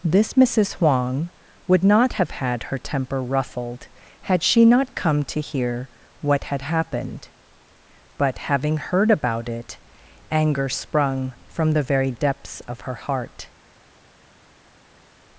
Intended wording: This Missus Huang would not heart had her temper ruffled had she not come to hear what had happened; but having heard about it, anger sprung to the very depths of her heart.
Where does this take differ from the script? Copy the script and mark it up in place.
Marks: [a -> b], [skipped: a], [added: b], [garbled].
This Missus Huang would not [heart -> have] had her temper ruffled had she not come to hear what had happened; but having heard about it, anger sprung [to -> from] the very depths of her heart.